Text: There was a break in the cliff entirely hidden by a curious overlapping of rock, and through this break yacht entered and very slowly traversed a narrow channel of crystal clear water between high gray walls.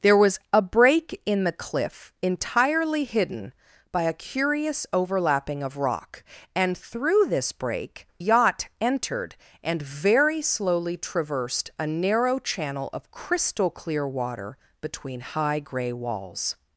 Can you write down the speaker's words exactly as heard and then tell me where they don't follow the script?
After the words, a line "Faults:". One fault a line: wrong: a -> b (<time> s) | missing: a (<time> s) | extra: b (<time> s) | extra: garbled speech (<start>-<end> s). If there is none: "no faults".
There was a break in the cliff entirely hidden by a curious overlapping of rock, and through this break yacht entered and very slowly traversed a narrow channel of crystal clear water between high gray walls.
Faults:
no faults